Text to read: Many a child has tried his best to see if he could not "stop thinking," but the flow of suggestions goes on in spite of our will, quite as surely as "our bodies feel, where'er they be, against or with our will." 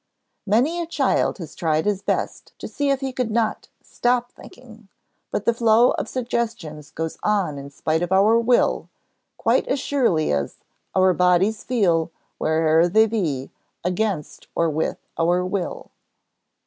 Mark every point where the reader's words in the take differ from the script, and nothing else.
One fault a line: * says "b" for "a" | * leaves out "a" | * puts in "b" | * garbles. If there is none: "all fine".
all fine